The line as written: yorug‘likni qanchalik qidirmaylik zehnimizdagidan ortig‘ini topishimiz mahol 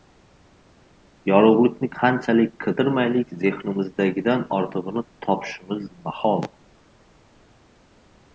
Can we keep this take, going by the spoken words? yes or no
yes